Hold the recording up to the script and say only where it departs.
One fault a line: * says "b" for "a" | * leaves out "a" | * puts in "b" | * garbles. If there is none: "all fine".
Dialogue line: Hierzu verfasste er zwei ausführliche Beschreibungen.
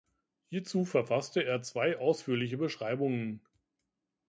all fine